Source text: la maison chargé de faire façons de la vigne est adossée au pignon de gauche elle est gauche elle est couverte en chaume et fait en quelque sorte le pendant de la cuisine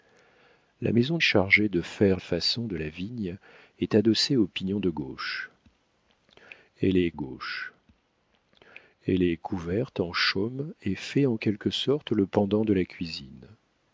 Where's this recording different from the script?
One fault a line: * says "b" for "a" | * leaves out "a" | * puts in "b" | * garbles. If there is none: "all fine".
all fine